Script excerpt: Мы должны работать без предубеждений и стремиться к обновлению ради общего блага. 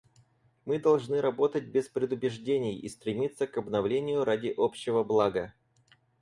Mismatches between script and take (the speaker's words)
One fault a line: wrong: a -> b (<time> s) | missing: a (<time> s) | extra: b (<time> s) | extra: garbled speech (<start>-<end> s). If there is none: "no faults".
no faults